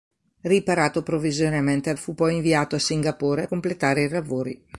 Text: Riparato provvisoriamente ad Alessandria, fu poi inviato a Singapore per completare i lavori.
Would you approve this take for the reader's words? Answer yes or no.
no